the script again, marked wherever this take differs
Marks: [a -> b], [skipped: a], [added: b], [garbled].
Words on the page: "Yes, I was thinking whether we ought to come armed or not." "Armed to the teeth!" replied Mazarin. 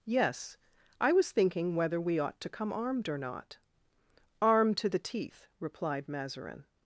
"Yes, I was thinking whether we ought to come armed or not." "Armed to the teeth!" replied Mazarin.